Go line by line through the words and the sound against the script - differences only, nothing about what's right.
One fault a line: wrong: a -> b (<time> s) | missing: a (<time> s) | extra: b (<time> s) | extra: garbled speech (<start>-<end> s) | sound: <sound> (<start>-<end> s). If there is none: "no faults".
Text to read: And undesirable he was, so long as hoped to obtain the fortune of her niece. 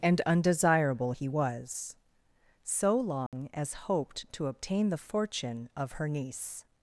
sound: dropout (3.3-3.3 s)